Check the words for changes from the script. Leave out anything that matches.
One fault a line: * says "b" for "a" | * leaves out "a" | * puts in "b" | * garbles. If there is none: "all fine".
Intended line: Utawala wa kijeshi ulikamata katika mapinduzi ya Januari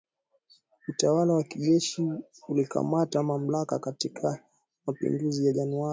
* puts in "mamlaka"